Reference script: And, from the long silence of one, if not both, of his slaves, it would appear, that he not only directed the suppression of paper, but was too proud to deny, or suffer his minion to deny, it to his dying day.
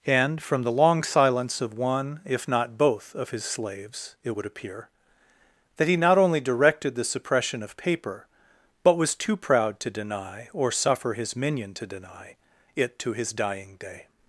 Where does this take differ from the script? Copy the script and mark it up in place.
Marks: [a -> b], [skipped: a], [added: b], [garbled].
And, from the long silence of one, if not both, of his slaves, it would appear, that he not only directed the suppression of paper, but was too proud to deny, or suffer his minion to deny, it to his dying day.